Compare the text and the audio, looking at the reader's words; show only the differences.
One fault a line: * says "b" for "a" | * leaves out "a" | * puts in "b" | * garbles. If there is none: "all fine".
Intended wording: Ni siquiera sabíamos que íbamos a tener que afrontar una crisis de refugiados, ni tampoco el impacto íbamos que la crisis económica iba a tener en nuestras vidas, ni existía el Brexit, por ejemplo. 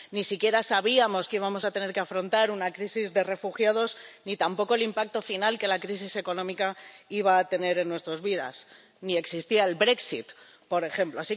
* says "final" for "íbamos"